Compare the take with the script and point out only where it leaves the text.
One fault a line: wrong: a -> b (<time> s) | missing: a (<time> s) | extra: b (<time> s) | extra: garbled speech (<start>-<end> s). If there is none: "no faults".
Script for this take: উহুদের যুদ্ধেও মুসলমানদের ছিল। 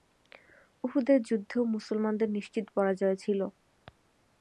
extra: নিশ্চিত পরাজয় (2.3 s)